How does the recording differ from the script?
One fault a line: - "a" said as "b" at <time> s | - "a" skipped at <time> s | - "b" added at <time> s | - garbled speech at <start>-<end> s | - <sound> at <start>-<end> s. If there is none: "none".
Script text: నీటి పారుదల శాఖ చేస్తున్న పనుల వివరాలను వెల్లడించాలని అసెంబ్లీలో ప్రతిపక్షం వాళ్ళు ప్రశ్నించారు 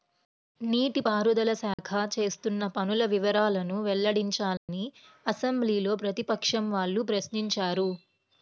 - dropout at 1.7-1.8 s
- dropout at 4.6-4.7 s